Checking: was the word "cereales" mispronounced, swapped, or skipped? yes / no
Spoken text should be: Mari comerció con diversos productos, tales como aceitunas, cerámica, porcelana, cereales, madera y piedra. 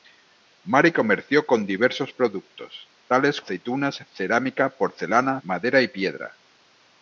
yes